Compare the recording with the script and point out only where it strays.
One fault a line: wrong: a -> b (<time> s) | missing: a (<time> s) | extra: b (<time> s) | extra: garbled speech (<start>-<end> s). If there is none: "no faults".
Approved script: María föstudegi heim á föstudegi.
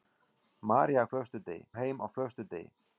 no faults